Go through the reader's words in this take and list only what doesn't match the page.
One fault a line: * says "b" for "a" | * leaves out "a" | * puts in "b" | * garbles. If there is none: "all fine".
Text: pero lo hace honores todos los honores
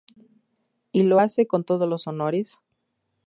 * says "y" for "pero"
* says "con" for "honores"